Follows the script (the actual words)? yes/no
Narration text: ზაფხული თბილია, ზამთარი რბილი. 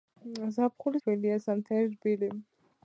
yes